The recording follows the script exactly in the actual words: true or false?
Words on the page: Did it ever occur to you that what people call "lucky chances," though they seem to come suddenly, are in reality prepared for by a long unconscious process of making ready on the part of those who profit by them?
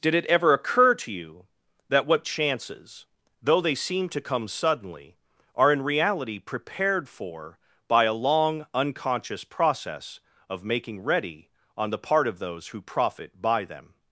false